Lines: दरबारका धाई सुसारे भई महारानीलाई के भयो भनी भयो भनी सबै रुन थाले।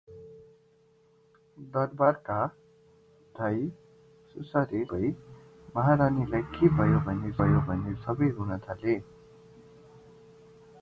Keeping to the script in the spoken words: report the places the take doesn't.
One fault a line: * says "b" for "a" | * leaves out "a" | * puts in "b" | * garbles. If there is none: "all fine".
all fine